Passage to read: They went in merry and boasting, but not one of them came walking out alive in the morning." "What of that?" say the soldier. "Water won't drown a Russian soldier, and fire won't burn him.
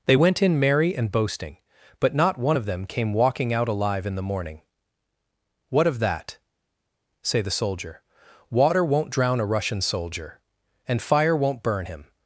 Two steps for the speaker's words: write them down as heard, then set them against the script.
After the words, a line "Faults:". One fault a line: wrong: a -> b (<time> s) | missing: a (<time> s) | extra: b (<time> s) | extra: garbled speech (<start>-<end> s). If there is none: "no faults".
They went in merry and boasting, but not one of them came walking out alive in the morning." "What of that?" say the soldier. "Water won't drown a Russian soldier, and fire won't burn him.
Faults:
no faults